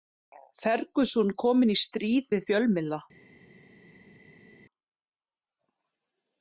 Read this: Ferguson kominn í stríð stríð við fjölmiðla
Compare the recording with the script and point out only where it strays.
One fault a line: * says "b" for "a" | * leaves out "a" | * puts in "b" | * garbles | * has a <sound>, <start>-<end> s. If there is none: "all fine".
* leaves out "stríð"